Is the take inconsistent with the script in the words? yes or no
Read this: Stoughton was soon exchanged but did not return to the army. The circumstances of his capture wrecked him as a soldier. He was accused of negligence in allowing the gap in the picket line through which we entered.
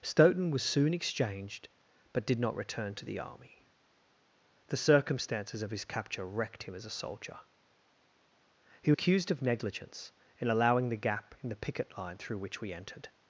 yes